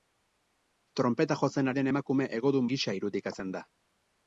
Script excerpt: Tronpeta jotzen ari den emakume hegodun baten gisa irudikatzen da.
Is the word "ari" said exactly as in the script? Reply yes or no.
no